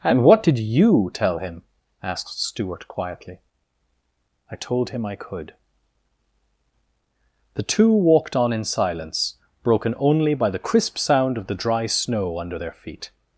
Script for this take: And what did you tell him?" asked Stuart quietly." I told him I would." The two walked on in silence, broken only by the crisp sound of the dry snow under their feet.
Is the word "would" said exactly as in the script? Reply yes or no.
no